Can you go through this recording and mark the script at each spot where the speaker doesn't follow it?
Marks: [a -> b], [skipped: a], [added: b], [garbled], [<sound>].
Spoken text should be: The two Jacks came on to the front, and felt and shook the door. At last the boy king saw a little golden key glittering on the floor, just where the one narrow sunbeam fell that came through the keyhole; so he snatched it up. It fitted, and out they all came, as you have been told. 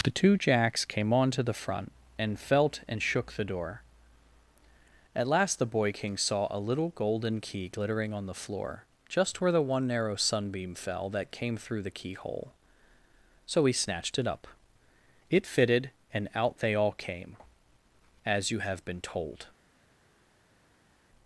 The two Jacks came on to the front, and felt and shook the door. At last the boy king saw a little golden key glittering on the floor, just where the one narrow sunbeam fell that came through the keyhole; so he snatched it up. It fitted, and out they all came, as you have been told.